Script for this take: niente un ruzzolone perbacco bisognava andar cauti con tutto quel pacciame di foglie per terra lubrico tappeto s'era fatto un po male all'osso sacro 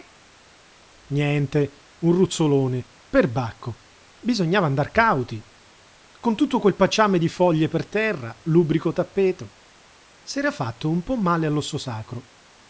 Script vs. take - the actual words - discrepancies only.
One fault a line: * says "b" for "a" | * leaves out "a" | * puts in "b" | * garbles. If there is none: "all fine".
all fine